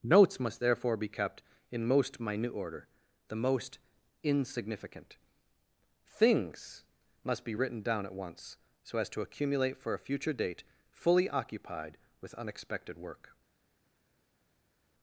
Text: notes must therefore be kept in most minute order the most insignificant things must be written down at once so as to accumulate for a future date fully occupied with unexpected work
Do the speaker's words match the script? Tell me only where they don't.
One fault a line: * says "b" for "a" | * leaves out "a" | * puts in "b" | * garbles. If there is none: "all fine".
all fine